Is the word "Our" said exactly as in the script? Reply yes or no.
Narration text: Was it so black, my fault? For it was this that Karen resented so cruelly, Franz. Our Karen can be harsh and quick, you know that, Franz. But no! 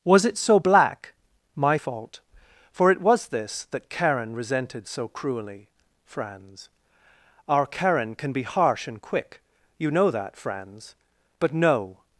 yes